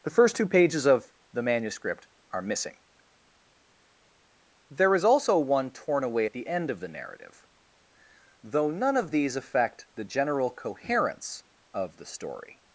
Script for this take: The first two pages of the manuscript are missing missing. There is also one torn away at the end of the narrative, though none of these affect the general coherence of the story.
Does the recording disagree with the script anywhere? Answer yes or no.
yes